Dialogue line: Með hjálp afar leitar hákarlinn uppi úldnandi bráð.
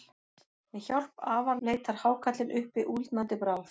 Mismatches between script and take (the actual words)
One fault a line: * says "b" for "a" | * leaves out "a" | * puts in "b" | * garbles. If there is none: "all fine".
all fine